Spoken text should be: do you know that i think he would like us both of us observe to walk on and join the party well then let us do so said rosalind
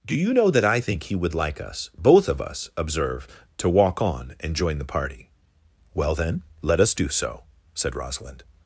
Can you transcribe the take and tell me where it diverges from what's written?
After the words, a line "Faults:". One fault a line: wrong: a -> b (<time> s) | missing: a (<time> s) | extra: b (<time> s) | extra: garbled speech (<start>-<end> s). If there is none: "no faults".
do you know that i think he would like us both of us observe to walk on and join the party well then let us do so said rosalind
Faults:
no faults